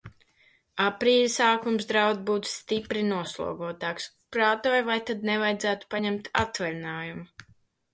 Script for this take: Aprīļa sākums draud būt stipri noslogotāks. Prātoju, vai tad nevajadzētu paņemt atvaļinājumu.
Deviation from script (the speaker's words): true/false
false